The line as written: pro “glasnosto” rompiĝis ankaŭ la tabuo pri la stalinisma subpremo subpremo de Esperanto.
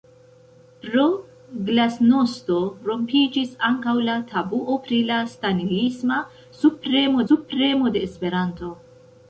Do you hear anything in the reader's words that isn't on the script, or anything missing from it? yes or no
no